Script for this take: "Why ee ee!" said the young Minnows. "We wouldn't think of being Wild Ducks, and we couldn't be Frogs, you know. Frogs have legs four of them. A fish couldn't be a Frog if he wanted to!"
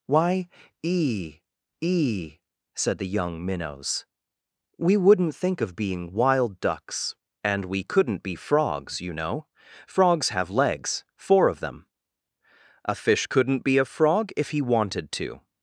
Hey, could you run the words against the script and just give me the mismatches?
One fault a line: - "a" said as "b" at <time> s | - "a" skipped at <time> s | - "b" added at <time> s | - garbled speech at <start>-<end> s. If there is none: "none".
none